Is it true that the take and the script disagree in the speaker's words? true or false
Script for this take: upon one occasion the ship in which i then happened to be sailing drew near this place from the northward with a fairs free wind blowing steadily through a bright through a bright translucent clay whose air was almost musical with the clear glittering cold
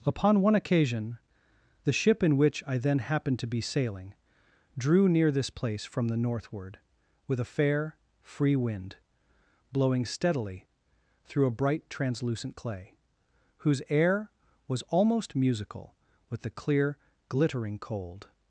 true